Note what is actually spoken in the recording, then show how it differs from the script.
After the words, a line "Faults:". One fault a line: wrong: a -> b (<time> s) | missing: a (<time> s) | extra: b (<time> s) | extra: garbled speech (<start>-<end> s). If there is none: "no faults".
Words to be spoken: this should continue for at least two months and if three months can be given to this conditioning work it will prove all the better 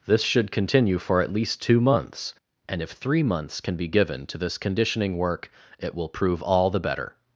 this should continue for at least two months and if three months can be given to this conditioning work it will prove all the better
Faults:
no faults